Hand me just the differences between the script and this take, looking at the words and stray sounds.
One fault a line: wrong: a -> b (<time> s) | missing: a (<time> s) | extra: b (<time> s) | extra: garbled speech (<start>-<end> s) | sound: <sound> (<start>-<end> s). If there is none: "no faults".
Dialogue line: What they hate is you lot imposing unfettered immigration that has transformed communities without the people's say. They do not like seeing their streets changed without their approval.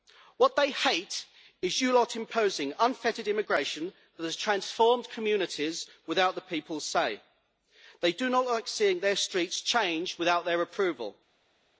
no faults